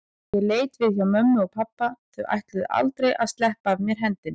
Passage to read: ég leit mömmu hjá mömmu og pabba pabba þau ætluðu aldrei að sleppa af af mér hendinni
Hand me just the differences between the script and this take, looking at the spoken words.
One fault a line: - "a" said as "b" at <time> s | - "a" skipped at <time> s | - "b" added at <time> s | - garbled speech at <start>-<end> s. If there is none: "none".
- "mömmu" said as "við" at 0.8 s
- "pabba" skipped at 1.9 s
- "af" skipped at 3.9 s